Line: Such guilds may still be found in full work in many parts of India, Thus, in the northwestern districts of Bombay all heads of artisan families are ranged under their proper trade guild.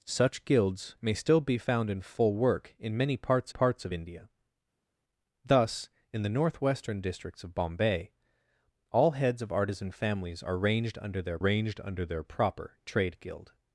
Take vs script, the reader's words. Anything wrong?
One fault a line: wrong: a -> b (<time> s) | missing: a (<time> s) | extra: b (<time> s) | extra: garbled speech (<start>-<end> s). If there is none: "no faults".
extra: parts (3.5 s)
extra: ranged under their (11.4 s)